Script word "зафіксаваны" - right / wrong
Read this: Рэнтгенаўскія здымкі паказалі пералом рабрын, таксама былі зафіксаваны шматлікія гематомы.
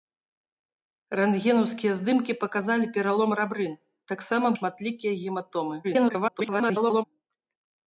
wrong